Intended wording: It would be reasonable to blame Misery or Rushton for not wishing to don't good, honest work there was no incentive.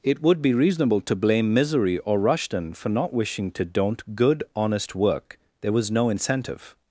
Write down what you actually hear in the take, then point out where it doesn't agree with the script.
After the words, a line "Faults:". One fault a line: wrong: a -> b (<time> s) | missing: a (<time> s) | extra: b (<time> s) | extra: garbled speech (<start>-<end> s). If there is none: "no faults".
It would be reasonable to blame Misery or Rushton for not wishing to don't good, honest work there was no incentive.
Faults:
no faults